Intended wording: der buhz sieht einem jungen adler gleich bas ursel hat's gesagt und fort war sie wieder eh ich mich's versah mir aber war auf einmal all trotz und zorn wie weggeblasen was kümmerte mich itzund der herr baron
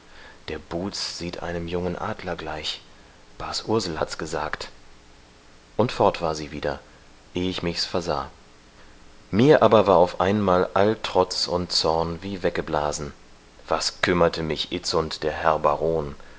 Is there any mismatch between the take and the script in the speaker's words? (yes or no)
no